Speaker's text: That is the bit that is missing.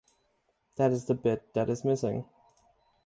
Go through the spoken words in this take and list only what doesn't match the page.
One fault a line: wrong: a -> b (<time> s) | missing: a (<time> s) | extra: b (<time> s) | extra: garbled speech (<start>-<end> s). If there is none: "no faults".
no faults